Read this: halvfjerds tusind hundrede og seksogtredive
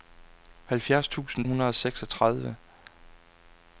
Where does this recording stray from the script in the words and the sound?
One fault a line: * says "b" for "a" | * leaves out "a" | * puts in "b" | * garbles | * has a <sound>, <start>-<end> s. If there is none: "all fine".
all fine